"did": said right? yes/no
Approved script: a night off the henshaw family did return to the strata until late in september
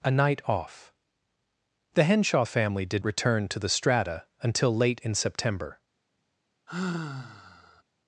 yes